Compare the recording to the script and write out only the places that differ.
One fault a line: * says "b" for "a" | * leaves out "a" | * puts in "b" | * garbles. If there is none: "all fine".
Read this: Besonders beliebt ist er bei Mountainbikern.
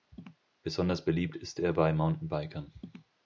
all fine